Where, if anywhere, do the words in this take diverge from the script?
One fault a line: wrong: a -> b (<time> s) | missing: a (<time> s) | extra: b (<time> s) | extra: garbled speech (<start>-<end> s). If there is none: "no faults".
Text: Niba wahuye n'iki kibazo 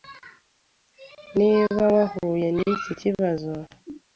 no faults